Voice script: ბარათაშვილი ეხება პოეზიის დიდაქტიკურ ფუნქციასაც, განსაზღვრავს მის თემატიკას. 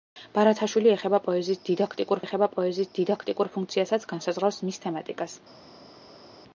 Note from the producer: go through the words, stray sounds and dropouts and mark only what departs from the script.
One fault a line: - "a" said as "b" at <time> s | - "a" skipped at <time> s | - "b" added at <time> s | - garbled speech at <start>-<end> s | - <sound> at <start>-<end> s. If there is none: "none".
- "ეხება პოეზიის დიდაქტიკურ" added at 2.2 s